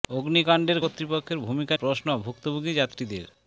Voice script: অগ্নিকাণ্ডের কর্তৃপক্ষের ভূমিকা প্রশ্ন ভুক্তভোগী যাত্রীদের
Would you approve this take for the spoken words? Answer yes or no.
yes